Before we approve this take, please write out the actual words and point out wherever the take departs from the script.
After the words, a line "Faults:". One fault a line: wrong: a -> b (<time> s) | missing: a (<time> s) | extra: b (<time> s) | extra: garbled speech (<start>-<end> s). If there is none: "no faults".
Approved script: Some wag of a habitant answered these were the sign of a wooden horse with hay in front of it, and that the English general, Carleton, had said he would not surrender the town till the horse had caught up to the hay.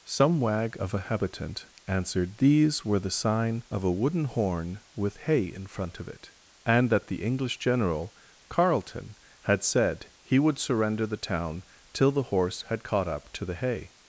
Some wag of a habitant answered these were the sign of a wooden horn with hay in front of it, and that the English general, Carleton, had said he would surrender the town till the horse had caught up to the hay.
Faults:
wrong: horse -> horn (4.2 s)
missing: not (10.6 s)